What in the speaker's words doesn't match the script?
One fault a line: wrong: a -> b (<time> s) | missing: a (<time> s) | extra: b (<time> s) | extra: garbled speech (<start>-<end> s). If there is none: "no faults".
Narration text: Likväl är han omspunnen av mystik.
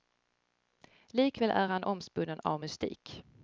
no faults